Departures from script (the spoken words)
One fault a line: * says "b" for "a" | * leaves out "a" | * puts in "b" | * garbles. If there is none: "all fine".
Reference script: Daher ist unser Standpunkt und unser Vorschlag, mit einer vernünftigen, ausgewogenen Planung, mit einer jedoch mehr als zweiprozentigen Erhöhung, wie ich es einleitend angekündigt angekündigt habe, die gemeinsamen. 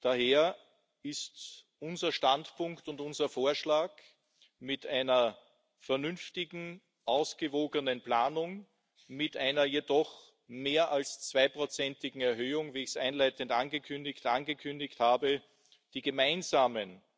all fine